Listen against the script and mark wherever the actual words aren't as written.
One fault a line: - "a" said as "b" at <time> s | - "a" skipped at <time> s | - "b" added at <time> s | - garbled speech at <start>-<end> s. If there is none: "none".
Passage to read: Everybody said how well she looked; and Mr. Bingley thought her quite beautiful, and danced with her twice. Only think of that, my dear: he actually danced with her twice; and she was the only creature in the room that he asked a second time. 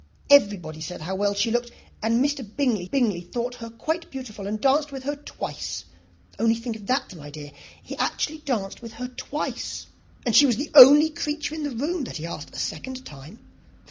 - "bingley" added at 2.9 s